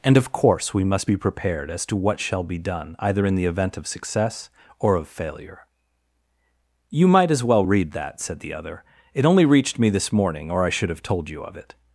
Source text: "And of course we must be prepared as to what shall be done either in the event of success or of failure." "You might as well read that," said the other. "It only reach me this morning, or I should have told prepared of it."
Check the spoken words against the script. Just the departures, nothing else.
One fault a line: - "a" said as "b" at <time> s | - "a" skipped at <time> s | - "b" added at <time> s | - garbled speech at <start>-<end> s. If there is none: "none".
- "reach" said as "reached" at 9.5 s
- "prepared" said as "you" at 11.3 s